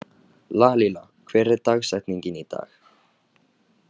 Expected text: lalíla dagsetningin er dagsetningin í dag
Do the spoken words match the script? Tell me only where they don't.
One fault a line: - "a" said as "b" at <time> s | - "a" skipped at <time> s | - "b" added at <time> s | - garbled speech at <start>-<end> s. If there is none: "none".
- "dagsetningin" said as "hver" at 1.3 s